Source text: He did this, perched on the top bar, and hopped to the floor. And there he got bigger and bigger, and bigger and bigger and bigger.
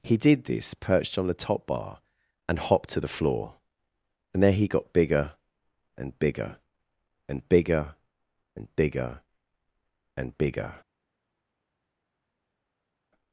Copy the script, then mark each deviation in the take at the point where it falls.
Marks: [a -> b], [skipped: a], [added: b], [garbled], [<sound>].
He did this, perched on the top bar, and hopped to the floor. And there he got bigger and bigger, and bigger and bigger and bigger.